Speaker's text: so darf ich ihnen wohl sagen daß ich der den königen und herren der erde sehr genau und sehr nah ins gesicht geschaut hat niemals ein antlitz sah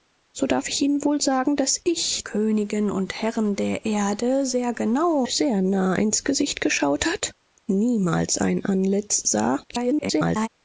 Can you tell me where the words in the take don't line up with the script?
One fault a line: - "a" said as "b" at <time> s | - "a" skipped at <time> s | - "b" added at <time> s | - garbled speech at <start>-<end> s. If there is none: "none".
- "der den" skipped at 2.2 s
- "und" skipped at 5.3 s
- garbled speech at 9.7-10.5 s